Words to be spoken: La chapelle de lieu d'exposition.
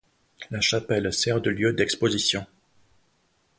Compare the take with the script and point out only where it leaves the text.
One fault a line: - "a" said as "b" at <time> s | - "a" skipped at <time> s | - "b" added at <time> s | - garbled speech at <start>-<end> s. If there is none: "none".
- "sert" added at 1.1 s